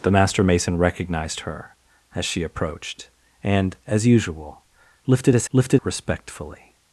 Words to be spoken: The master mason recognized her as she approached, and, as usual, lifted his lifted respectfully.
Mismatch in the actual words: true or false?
false